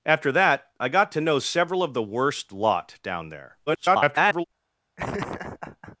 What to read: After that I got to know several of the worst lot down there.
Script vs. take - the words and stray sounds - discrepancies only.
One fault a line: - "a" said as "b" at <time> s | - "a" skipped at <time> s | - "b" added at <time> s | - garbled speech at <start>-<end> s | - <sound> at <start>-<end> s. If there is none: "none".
- garbled speech at 3.7-4.4 s
- laugh at 5.0-6.0 s